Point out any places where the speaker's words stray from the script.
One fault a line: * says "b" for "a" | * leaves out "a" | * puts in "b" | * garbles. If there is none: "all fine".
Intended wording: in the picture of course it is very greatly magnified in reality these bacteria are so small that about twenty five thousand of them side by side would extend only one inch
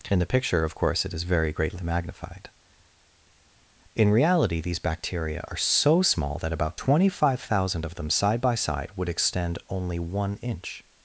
all fine